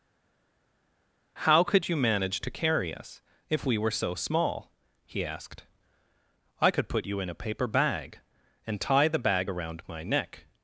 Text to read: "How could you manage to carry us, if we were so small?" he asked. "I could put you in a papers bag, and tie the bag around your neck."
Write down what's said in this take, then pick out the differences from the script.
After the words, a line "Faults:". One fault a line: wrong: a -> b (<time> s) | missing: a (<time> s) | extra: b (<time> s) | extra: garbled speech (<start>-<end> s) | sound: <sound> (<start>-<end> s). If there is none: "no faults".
"How could you manage to carry us, if we were so small?" he asked. "I could put you in a paper bag, and tie the bag around my neck."
Faults:
wrong: papers -> paper (7.3 s)
wrong: your -> my (9.9 s)